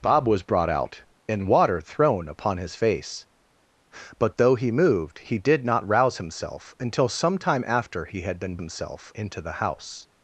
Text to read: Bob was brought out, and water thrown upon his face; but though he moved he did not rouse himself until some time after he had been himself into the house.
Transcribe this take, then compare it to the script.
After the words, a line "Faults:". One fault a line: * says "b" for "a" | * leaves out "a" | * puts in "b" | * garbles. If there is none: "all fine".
Bob was brought out, and water thrown upon his face; but though he moved he did not rouse himself until some time after he had been himself into the house.
Faults:
all fine